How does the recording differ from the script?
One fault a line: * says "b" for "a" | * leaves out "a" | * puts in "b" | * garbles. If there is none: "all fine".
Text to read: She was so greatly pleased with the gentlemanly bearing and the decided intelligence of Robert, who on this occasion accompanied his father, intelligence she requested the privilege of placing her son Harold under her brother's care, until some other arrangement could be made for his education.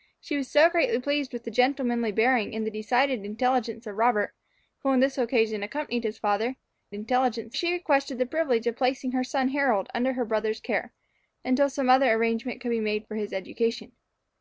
all fine